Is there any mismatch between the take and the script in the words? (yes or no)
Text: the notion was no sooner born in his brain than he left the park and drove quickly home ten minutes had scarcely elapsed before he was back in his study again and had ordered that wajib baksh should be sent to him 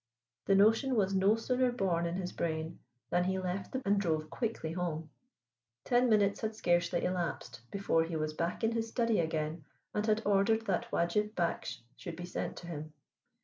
yes